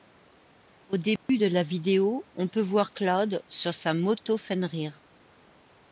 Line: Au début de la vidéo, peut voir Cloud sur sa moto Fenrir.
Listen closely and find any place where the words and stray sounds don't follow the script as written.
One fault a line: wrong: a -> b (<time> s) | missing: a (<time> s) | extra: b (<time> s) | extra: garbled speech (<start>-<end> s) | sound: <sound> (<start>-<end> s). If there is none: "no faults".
sound: dropout (1.2-1.3 s)
extra: on (2.3 s)